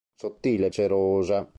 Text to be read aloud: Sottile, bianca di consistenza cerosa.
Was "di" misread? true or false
true